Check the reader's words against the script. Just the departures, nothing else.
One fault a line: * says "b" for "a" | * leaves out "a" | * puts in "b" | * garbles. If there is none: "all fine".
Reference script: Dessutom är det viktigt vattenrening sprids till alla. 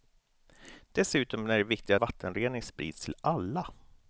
all fine